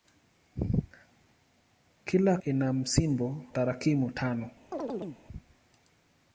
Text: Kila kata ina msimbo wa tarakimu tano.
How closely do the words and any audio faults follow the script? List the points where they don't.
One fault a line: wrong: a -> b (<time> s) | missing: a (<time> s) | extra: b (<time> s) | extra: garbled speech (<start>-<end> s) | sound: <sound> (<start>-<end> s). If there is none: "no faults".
missing: kata (2.4 s)
missing: wa (3.4 s)
sound: chirp (4.7-5.2 s)